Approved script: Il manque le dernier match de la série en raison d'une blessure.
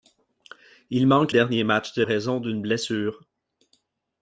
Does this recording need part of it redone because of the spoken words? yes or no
yes